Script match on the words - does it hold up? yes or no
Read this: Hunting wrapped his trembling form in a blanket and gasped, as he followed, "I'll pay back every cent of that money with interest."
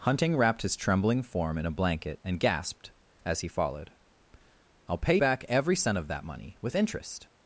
yes